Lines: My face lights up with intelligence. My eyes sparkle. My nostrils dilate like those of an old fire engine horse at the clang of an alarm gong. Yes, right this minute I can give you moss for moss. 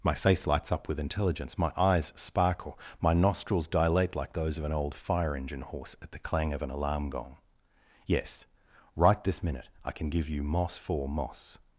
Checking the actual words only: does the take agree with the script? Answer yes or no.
yes